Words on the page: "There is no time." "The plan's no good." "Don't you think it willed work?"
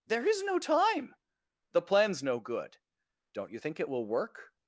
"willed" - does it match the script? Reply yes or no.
no